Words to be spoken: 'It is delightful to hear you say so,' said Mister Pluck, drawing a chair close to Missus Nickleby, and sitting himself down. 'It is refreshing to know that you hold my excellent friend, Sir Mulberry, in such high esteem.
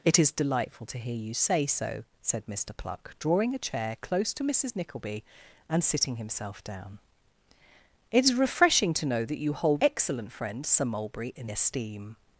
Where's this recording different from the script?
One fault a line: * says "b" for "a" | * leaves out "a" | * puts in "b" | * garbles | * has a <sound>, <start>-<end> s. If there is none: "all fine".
* leaves out "my"
* leaves out "such high"